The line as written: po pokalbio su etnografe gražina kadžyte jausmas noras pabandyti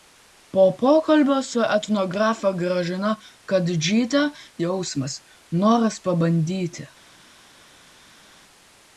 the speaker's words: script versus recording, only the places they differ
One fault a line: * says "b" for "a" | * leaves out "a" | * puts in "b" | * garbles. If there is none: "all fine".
all fine